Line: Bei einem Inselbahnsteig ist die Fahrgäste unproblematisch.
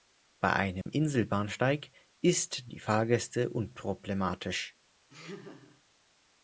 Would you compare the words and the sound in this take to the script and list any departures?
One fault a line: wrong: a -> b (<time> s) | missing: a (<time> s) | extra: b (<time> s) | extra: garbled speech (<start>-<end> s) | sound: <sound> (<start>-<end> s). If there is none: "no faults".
sound: dropout (0.8-0.9 s)
sound: laugh (5.1-5.8 s)